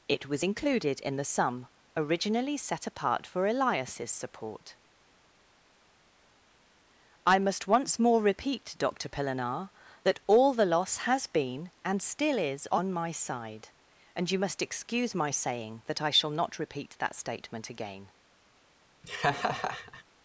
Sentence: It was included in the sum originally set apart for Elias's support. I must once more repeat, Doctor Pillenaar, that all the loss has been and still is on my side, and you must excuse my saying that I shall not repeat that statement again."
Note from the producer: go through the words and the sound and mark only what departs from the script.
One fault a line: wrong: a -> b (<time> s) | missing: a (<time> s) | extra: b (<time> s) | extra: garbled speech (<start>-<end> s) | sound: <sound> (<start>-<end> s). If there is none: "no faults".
sound: laugh (19.0-20.0 s)